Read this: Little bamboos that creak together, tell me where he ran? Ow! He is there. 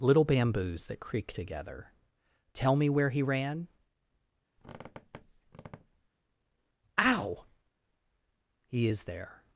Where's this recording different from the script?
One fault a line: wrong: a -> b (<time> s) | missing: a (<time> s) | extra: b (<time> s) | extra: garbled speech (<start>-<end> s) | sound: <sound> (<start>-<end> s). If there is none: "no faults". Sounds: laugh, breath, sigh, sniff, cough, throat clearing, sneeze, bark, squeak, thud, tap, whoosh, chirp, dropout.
sound: squeak (4.6-6.1 s)